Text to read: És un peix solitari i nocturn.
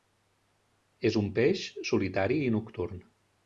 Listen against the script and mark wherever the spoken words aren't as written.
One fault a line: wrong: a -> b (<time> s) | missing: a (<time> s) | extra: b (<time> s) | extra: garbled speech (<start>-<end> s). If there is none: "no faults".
no faults